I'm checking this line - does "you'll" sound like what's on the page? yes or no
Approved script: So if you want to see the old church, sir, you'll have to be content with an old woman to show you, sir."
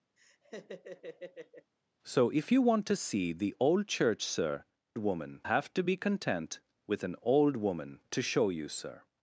no